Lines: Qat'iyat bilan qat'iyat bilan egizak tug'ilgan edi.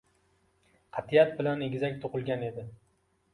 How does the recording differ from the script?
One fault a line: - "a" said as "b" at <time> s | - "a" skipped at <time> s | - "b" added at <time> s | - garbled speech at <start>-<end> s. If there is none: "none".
- "qat'iyat bilan" skipped at 1.6 s